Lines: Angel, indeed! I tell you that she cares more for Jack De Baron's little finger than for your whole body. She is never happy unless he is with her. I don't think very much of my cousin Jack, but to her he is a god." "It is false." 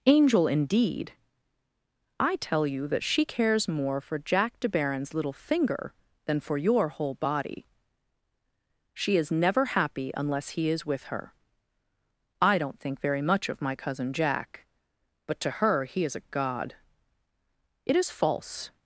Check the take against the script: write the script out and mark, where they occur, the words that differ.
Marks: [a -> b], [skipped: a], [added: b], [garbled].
Angel, indeed! I tell you that she cares more for Jack De Baron's little finger than for your whole body. She is never happy unless he is with her. I don't think very much of my cousin Jack, but to her he is a god." "It is false."